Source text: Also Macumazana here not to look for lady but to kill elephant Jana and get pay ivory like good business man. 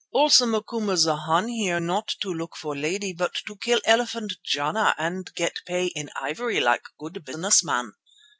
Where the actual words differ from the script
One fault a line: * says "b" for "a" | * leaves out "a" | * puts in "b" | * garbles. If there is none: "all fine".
* puts in "in"